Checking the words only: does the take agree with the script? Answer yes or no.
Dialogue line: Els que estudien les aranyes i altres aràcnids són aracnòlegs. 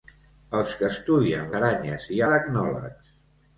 no